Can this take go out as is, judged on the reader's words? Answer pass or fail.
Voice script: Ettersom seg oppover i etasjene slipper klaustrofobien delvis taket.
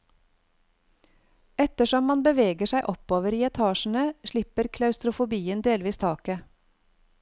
fail